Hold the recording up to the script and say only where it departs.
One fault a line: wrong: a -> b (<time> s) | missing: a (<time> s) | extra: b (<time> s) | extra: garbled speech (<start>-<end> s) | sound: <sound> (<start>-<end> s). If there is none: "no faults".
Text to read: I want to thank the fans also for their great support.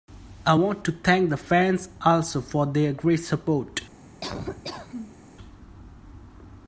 sound: laugh (4.2-5.2 s)